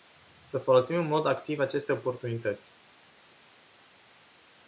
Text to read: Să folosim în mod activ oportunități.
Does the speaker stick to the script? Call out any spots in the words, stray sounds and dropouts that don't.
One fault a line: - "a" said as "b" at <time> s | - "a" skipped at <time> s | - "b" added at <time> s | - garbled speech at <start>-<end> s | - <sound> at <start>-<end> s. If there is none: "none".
- "aceste" added at 1.6 s